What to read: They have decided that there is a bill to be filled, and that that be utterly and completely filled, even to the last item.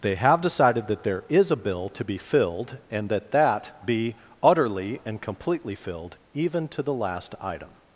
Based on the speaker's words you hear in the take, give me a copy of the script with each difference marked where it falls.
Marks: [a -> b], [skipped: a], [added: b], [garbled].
They have decided that there is a bill to be filled, and that that be utterly and completely filled, even to the last item.